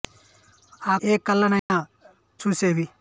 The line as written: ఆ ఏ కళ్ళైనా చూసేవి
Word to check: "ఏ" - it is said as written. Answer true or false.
true